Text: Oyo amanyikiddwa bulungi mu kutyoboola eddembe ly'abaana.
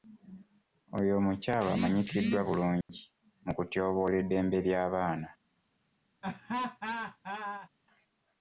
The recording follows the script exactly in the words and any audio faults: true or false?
false